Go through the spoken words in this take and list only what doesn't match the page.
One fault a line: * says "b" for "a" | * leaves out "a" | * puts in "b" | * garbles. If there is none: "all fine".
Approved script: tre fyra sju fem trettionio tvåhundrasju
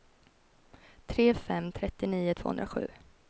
* leaves out "fyra sju"